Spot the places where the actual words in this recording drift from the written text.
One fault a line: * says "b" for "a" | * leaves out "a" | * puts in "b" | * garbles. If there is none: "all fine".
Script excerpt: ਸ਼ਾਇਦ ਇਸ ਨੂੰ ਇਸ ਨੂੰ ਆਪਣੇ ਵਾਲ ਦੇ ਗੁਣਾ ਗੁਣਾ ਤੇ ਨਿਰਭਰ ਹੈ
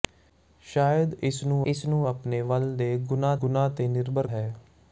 all fine